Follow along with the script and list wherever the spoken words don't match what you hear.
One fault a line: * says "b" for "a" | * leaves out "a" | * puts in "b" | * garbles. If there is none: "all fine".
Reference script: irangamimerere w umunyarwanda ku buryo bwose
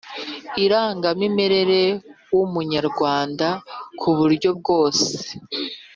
all fine